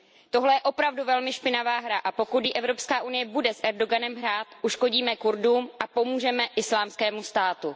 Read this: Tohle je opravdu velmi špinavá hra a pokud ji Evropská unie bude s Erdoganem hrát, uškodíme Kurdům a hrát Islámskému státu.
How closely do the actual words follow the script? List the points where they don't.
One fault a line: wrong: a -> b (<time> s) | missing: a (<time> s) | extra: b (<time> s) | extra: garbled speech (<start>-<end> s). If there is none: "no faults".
wrong: hrát -> pomůžeme (5.9 s)